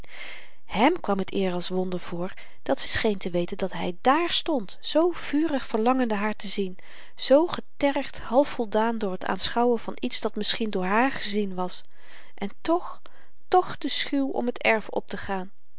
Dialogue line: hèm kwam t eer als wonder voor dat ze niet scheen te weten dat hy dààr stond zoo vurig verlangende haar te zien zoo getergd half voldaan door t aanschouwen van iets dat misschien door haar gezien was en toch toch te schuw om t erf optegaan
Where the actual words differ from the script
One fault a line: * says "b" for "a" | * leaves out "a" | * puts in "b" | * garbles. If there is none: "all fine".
* leaves out "niet"